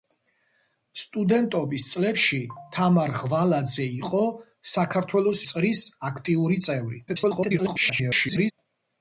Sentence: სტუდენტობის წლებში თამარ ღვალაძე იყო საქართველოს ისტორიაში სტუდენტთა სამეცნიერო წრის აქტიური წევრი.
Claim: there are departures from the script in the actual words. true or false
true